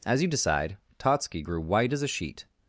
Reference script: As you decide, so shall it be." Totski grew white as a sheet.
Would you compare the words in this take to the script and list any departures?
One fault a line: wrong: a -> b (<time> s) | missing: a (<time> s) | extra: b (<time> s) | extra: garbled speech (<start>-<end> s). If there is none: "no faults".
missing: so shall it be (0.8 s)